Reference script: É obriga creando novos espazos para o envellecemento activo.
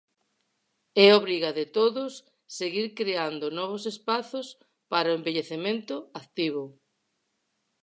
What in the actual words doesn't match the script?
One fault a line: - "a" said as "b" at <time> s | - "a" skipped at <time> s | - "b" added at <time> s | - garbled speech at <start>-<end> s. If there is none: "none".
- "de todos seguir" added at 1.5 s